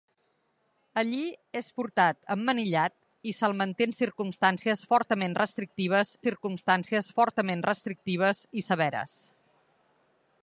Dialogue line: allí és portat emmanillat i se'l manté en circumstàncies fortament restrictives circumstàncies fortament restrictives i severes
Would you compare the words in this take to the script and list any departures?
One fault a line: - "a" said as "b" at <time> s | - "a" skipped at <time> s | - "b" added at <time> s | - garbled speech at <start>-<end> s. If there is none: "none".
none